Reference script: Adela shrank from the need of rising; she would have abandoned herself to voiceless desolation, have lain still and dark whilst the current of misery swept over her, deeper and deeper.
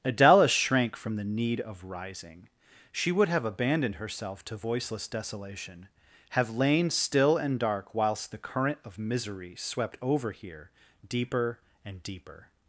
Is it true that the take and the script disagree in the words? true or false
true